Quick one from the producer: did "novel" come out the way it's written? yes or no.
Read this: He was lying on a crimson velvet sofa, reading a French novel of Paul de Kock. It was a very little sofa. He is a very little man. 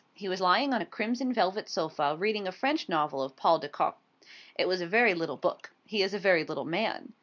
yes